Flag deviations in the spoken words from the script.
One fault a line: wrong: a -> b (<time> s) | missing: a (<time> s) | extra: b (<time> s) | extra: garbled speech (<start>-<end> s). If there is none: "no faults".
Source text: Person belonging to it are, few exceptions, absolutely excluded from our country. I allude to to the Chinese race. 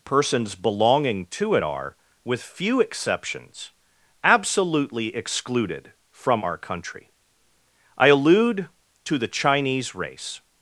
wrong: Person -> Persons (0.0 s)
extra: with (2.2 s)
missing: to (9.2 s)